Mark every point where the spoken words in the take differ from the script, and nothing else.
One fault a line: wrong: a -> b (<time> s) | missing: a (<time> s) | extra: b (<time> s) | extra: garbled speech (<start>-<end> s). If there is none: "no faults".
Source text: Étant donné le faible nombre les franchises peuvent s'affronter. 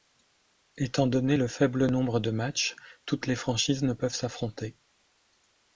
extra: de matchs toutes (2.2 s)
extra: ne (3.8 s)